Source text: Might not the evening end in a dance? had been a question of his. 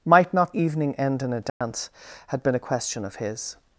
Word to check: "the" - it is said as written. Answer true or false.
false